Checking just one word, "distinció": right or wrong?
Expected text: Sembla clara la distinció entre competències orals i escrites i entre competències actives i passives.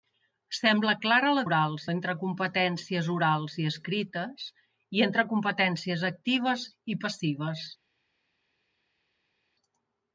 wrong